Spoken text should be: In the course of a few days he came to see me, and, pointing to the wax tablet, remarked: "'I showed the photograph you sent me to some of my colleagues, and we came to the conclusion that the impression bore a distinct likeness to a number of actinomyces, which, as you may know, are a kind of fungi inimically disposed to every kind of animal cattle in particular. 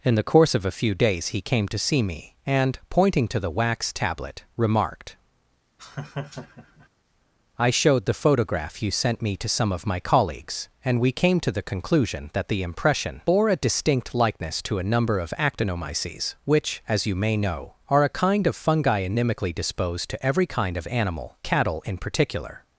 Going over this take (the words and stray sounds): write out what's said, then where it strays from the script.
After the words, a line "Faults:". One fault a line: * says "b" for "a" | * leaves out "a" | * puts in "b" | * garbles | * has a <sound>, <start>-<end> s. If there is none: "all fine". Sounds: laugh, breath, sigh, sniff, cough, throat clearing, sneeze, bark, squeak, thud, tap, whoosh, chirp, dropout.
In the course of a few days he came to see me, and, pointing to the wax tablet, remarked: "'I showed the photograph you sent me to some of my colleagues, and we came to the conclusion that the impression bore a distinct likeness to a number of actinomyces, which, as you may know, are a kind of fungi inimically disposed to every kind of animal cattle in particular.
Faults:
* has a laugh, 5.8-6.9 s